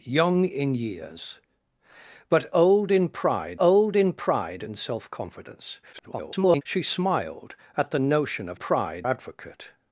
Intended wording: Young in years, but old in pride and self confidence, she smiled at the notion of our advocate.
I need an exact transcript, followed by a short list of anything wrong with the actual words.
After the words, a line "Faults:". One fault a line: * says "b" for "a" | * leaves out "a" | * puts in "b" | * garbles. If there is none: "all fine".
Young in years, but old in pride old in pride and self confidence, [garbled] she smiled at the notion of pride advocate.
Faults:
* puts in "old in pride"
* garbles
* says "pride" for "our"